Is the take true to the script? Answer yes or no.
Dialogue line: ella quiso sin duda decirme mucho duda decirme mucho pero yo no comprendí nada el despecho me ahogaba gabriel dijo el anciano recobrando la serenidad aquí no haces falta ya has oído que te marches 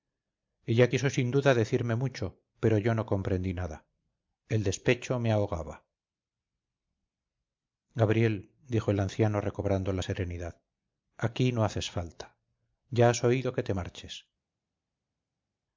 no